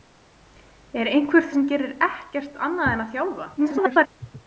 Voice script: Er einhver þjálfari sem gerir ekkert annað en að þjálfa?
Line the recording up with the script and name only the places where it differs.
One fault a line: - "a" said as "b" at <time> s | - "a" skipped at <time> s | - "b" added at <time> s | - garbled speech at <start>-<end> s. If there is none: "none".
- "þjálfari" skipped at 1.4 s
- garbled speech at 3.6-4.1 s